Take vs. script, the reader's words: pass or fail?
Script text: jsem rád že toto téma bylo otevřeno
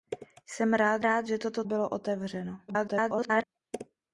fail